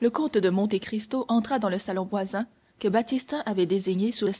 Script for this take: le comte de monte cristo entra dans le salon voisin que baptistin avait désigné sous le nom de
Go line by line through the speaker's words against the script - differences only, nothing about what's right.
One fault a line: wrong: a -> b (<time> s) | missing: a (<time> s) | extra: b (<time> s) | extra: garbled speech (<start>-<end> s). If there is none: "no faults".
missing: le nom (4.3 s)